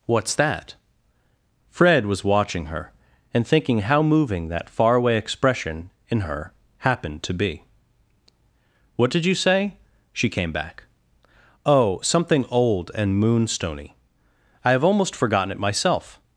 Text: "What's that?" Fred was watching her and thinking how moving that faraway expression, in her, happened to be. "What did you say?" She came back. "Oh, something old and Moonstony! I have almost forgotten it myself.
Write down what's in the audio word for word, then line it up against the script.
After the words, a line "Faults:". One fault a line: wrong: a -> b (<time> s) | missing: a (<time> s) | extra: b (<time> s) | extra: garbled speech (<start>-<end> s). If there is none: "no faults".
"What's that?" Fred was watching her and thinking how moving that faraway expression, in her, happened to be. "What did you say?" She came back. "Oh, something old and Moonstony! I have almost forgotten it myself.
Faults:
no faults